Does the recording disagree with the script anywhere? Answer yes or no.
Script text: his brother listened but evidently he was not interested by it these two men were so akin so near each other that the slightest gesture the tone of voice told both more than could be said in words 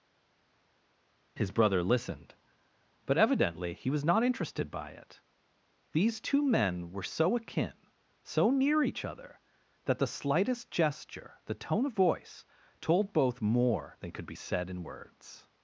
no